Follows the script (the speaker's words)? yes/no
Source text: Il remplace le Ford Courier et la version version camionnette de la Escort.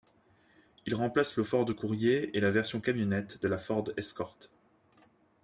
no